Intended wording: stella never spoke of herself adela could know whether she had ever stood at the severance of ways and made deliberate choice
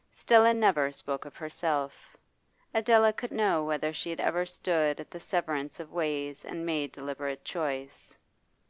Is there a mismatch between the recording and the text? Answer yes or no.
no